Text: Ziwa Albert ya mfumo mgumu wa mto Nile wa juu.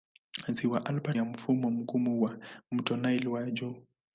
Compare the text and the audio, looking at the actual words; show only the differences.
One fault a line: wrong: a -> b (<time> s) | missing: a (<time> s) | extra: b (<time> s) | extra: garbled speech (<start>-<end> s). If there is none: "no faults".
no faults